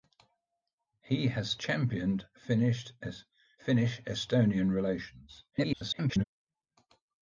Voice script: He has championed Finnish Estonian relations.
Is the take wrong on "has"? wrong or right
right